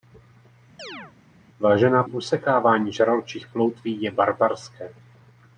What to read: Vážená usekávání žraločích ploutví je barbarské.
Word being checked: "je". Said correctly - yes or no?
yes